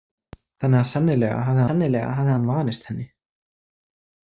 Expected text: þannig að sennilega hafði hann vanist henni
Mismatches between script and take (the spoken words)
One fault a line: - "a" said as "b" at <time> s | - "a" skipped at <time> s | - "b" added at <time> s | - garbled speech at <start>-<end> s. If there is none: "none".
- "sennilega hafði" added at 1.7 s